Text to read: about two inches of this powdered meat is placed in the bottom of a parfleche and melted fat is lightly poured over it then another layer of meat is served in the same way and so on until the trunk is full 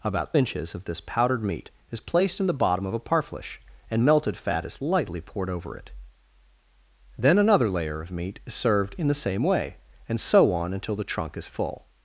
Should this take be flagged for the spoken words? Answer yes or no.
yes